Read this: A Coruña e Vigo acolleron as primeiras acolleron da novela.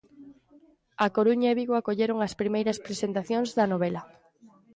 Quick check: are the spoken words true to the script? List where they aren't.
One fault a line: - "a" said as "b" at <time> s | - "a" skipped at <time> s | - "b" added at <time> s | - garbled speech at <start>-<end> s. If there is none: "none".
- "acolleron" said as "presentacións" at 2.9 s